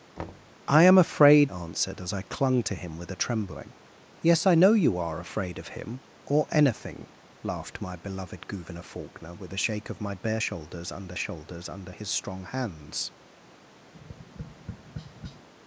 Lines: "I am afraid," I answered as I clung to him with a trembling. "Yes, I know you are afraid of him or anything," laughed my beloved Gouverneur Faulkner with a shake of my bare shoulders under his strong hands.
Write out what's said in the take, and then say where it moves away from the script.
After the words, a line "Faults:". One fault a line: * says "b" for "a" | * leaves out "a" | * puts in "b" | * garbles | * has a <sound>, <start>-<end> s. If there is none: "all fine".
"I am afraid," answered as I clung to him with a trembling. "Yes, I know you are afraid of him or anything," laughed my beloved Gouverneur Faulkner with a shake of my bare shoulders under shoulders under his strong hands.
Faults:
* has a thud, 0.2-0.6 s
* leaves out "I"
* puts in "shoulders under"
* has a tap, 13.9-15.5 s